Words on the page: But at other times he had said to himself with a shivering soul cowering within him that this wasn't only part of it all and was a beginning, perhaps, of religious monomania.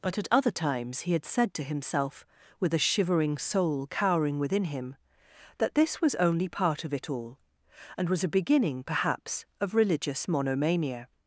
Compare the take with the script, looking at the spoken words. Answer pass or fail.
fail